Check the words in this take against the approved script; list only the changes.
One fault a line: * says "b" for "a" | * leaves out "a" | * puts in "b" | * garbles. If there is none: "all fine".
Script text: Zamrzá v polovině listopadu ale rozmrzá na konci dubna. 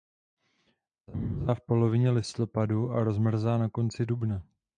* says "a" for "ale"